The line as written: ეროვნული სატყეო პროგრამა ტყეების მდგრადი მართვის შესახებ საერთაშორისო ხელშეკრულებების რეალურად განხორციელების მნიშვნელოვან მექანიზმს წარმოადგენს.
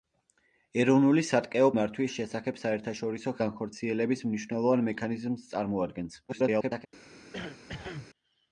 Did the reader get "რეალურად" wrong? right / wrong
wrong